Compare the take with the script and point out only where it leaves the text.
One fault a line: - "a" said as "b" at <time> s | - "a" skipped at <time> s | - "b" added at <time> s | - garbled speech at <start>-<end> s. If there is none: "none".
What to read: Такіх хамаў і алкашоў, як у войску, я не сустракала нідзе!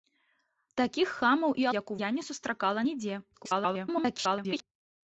- "алкашоў" skipped at 1.7 s
- "войску" skipped at 2.0 s
- garbled speech at 3.3-4.6 s